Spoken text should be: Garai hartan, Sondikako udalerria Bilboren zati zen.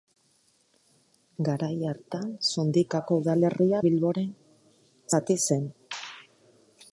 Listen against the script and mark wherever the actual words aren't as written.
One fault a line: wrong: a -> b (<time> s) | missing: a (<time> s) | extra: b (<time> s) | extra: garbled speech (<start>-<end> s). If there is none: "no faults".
no faults